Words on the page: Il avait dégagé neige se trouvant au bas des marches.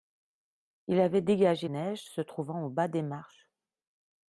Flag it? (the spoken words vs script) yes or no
no